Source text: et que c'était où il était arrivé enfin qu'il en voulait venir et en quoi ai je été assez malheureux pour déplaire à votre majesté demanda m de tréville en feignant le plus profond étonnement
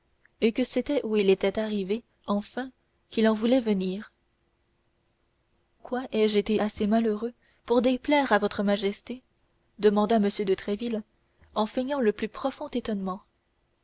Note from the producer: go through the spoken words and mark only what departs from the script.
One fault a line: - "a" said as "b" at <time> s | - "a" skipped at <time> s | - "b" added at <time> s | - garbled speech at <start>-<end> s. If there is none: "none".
- "et en" skipped at 4.1 s